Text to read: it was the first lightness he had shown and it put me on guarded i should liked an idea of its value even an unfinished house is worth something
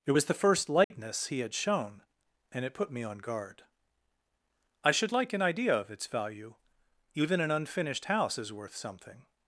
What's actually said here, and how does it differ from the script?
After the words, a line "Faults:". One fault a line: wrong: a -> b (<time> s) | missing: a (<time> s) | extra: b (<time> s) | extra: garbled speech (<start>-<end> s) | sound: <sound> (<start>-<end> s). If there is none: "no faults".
it was the first lightness he had shown and it put me on guard i should like an idea of its value even an unfinished house is worth something
Faults:
sound: dropout (0.8-0.9 s)
wrong: guarded -> guard (3.2 s)
wrong: liked -> like (5.1 s)